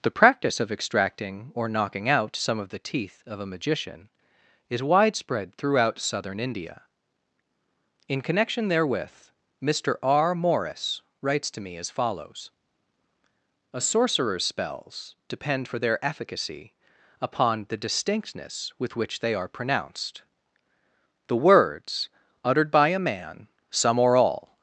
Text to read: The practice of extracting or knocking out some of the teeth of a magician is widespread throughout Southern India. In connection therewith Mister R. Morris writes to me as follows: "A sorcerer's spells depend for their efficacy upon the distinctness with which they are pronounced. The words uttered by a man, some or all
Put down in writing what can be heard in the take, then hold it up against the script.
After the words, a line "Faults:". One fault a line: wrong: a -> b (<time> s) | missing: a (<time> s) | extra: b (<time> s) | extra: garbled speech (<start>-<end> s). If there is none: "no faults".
The practice of extracting or knocking out some of the teeth of a magician is widespread throughout Southern India. In connection therewith Mister R. Morris writes to me as follows: "A sorcerer's spells depend for their efficacy upon the distinctness with which they are pronounced. The words uttered by a man, some or all
Faults:
no faults